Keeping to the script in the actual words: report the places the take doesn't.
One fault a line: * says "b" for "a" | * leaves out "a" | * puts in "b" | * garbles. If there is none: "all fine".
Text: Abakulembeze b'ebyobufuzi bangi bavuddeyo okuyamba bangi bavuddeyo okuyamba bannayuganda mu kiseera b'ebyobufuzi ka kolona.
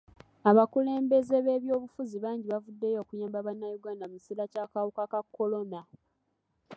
* leaves out "bangi bavuddeyo okuyamba"
* says "ky'akawuka" for "b'ebyobufuzi"